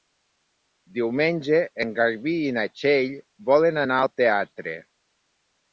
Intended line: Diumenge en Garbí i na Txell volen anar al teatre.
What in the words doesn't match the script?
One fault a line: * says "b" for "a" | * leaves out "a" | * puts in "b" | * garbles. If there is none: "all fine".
all fine